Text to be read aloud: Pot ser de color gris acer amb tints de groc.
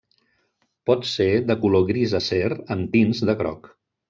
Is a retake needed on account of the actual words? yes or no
no